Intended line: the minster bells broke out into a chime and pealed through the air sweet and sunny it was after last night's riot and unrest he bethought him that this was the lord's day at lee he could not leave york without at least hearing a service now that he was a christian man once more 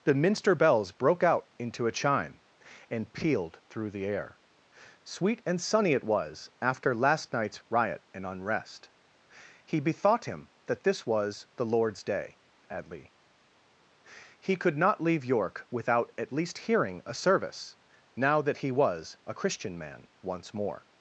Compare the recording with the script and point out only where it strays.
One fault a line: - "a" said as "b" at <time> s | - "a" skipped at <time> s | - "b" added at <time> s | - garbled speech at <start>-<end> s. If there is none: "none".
none